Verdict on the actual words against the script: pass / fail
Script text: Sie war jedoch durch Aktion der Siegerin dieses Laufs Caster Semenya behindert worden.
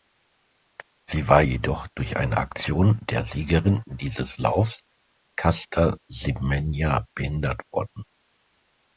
fail